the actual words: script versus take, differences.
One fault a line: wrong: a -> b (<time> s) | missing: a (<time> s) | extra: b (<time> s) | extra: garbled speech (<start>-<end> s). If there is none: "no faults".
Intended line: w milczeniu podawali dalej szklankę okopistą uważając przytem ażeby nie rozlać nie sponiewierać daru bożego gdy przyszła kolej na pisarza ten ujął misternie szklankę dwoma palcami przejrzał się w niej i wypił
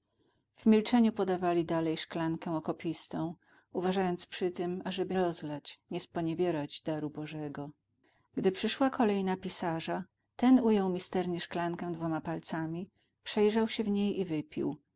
missing: nie (5.2 s)